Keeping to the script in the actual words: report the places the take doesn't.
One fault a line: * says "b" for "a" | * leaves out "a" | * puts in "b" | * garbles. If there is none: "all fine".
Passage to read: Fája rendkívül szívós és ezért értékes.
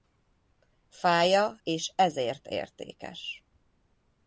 * leaves out "rendkívül szívós"